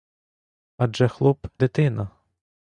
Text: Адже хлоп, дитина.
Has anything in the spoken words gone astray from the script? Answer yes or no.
no